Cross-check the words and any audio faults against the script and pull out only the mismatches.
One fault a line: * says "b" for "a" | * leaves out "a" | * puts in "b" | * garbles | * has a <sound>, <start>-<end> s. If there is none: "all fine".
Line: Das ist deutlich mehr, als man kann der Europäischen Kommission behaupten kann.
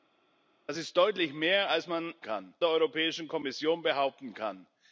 all fine